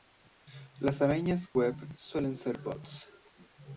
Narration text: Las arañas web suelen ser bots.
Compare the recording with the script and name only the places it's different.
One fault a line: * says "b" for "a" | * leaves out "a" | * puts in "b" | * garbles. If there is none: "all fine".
all fine